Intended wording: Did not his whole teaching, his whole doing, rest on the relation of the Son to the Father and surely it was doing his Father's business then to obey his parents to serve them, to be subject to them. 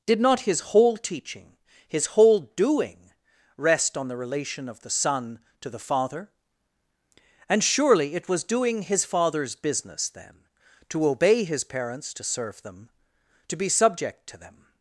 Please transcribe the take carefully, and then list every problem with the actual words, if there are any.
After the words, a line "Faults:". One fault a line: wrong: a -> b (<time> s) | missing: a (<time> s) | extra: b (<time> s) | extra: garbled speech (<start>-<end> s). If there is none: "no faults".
Did not his whole teaching, his whole doing, rest on the relation of the Son to the Father and surely it was doing his Father's business then to obey his parents to serve them, to be subject to them.
Faults:
no faults